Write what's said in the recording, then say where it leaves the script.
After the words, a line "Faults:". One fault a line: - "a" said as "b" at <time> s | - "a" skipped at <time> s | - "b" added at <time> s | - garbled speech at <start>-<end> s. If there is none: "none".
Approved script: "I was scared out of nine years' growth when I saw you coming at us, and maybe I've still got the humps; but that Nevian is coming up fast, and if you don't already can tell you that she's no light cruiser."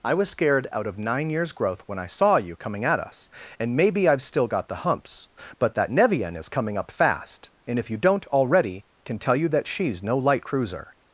"I was scared out of nine years' growth when I saw you coming at us, and maybe I've still got the humps; but that Nevian is coming up fast, and if you don't already can tell you that she's no light cruiser."
Faults:
none